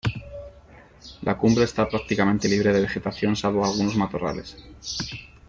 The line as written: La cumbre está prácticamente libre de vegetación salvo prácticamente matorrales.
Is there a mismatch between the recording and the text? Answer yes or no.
yes